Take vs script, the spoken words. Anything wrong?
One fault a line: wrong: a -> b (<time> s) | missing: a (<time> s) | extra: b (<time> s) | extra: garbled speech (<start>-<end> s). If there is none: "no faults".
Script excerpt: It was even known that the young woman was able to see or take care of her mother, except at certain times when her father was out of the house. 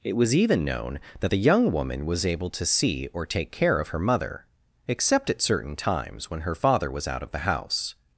no faults